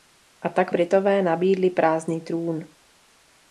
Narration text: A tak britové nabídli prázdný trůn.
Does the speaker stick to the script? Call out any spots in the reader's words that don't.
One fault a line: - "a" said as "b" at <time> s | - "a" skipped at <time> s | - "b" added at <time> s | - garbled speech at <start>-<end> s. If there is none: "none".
none